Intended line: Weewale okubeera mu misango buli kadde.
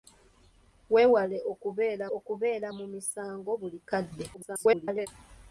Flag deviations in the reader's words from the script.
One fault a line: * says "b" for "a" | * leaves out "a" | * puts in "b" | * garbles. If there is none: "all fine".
* puts in "okubeera"
* garbles